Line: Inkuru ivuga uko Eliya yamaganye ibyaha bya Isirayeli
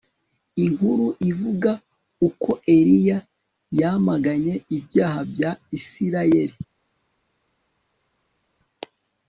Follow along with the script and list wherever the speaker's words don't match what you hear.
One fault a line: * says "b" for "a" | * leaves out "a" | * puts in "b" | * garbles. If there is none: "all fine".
all fine